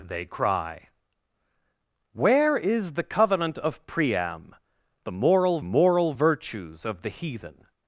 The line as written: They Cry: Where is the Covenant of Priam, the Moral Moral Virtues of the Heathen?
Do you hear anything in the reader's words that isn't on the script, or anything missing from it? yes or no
no